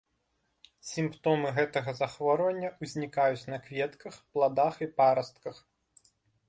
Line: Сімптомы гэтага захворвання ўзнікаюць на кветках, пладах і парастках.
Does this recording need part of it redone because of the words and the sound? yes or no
no